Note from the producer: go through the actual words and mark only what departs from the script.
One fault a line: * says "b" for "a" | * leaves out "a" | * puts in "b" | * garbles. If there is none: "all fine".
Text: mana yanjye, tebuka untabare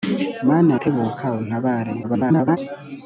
* leaves out "yanjye"
* garbles